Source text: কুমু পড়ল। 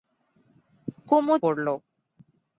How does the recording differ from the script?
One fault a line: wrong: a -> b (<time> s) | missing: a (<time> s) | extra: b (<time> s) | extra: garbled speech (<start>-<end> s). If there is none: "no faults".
no faults